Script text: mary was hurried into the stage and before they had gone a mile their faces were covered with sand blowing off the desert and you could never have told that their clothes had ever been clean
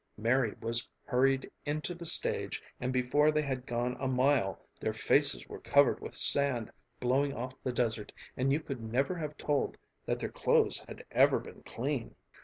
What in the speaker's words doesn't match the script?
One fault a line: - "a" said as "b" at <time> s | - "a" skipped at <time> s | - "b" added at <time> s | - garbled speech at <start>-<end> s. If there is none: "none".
none